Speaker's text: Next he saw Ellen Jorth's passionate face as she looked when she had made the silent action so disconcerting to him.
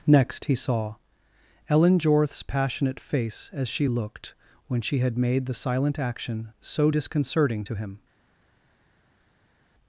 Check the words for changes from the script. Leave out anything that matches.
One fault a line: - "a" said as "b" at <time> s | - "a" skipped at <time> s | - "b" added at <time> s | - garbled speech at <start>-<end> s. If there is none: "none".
none